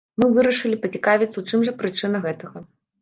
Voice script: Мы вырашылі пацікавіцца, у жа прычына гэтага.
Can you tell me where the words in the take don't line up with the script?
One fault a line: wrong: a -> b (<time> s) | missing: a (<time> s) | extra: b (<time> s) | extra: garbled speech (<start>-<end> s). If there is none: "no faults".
extra: чым (1.5 s)